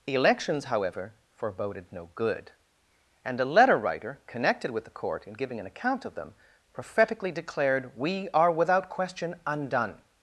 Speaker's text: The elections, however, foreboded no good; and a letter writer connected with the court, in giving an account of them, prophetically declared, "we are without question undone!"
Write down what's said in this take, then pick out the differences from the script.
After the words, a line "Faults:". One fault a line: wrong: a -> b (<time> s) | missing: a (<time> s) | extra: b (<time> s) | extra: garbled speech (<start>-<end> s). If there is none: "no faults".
elections, however, foreboded no good; and a letter writer connected with the court, in giving an account of them, prophetically declared, "we are without question undone!"
Faults:
missing: The (0.1 s)